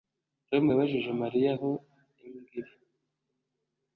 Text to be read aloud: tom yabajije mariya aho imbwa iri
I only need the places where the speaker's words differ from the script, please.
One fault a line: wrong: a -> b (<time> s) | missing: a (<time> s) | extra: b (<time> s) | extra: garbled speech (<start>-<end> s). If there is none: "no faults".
no faults